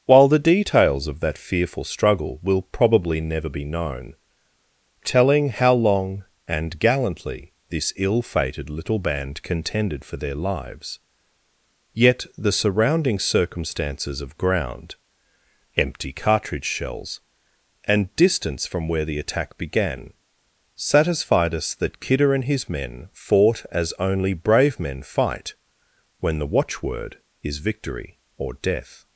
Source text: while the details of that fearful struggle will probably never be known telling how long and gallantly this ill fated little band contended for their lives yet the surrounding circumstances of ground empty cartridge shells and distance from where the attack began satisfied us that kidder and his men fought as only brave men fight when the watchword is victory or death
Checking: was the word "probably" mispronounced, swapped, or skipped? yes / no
no